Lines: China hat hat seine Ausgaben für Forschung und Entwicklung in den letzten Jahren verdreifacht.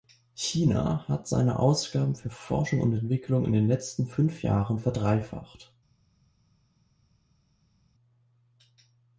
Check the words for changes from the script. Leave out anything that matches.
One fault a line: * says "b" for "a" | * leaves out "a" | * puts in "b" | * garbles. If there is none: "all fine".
* leaves out "hat"
* puts in "fünf"